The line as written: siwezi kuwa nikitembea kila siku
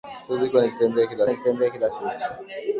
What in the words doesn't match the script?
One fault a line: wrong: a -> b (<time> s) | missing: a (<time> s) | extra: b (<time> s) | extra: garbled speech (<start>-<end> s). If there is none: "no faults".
extra: nikitembea kila (1.3 s)